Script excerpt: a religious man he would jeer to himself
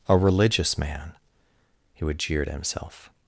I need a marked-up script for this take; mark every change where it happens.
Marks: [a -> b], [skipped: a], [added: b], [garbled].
a religious man he would jeer to himself